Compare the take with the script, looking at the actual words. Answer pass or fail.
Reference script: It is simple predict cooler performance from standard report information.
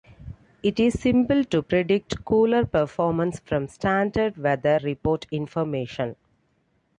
fail